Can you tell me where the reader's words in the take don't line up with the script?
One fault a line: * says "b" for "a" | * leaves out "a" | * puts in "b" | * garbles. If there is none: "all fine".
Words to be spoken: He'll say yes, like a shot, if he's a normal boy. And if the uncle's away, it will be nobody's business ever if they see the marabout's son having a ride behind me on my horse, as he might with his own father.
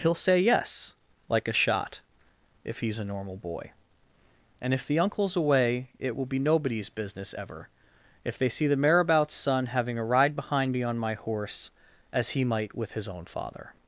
all fine